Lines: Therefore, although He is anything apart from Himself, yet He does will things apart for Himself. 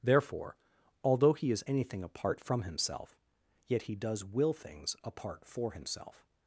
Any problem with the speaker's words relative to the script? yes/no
no